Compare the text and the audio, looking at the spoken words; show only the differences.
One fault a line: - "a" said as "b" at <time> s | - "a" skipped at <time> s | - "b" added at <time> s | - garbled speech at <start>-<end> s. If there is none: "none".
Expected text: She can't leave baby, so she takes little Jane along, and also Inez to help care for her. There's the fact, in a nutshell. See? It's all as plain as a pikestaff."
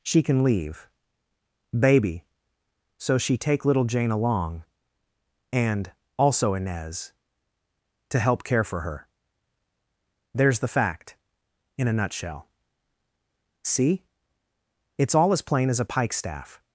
- "can't" said as "can" at 0.2 s
- "takes" said as "take" at 3.4 s